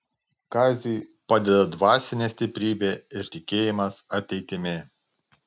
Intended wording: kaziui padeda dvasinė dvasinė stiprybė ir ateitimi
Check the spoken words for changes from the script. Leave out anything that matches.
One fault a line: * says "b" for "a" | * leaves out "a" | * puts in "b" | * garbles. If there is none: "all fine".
* leaves out "dvasinė"
* puts in "tikėjimas"